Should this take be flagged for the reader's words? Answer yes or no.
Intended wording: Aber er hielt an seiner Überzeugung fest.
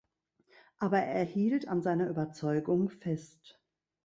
no